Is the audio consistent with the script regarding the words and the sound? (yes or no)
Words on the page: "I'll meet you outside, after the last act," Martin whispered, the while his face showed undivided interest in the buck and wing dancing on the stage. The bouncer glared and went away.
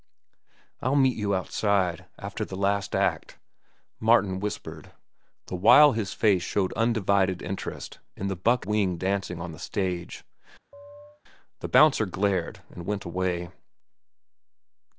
no